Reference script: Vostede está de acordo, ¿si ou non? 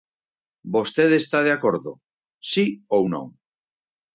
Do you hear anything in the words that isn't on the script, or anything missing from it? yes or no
no